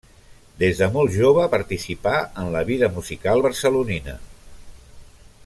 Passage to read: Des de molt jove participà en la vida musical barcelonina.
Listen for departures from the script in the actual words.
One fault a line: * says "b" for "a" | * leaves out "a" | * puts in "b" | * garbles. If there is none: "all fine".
all fine